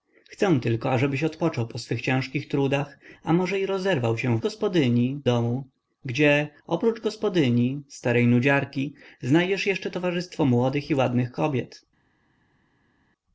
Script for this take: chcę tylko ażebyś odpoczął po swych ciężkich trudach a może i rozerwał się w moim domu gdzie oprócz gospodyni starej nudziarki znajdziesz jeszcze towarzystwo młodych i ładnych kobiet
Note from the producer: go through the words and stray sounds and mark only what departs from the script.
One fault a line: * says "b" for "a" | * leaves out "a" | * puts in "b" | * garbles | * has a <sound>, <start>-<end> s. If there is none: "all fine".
* says "gospodyni" for "moim"